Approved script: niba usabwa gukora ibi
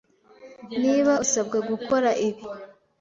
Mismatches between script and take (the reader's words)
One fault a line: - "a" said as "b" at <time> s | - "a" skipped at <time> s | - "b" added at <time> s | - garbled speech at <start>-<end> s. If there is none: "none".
none